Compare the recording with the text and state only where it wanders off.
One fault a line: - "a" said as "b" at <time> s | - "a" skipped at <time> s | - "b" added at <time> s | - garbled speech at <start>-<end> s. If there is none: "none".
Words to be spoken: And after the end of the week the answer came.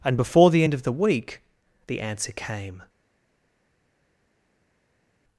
- "after" said as "before" at 0.2 s